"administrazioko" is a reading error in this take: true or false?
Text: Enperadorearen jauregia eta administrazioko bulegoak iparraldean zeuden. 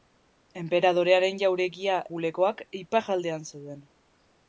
true